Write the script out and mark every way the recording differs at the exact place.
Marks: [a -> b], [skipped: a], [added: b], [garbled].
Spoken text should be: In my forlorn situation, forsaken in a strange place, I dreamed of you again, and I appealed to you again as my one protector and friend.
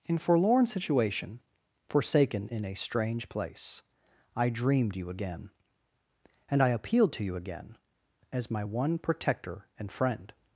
In [skipped: my] forlorn situation, forsaken in a strange place, I dreamed [skipped: of] you again, and I appealed to you again as my one protector and friend.